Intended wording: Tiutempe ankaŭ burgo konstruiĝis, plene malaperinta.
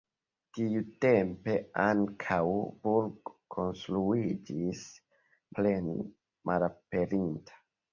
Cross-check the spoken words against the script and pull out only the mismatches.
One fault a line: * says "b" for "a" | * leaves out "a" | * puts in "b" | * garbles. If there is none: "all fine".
all fine